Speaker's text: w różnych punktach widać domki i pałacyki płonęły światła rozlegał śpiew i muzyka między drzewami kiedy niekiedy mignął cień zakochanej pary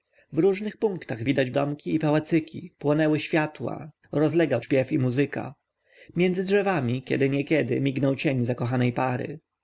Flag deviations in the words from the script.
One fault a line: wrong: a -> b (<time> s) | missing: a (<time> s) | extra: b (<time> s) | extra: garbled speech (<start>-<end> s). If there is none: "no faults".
no faults